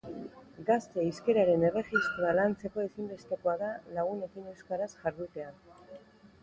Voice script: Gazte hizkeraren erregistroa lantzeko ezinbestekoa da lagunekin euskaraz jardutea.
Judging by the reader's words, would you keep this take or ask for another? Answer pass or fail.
pass